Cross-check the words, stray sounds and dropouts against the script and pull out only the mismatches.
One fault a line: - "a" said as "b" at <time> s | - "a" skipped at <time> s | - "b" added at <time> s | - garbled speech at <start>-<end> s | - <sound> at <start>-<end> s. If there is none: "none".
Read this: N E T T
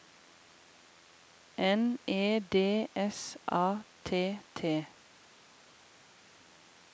- "D S A" added at 2.4 s